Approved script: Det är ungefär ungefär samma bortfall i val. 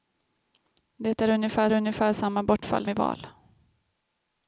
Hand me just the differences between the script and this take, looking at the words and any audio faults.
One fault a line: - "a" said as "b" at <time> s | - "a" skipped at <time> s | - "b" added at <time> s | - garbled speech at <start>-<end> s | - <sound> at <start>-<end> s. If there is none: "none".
none